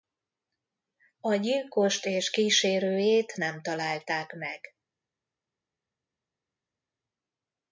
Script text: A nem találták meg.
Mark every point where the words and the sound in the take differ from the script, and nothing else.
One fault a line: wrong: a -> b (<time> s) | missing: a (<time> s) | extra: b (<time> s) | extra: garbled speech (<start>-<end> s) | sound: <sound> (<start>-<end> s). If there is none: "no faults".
extra: gyilkost és kísérőjét (1.4 s)